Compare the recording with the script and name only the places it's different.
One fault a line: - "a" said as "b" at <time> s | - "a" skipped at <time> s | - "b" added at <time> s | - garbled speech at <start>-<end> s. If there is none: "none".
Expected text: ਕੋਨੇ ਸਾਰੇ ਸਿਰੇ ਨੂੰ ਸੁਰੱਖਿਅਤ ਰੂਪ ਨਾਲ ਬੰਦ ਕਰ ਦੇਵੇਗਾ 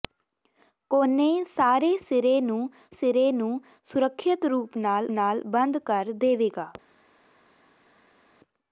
- "ਸਿਰੇ ਨੂੰ" added at 2.9 s
- "ਨਾਲ" added at 5.1 s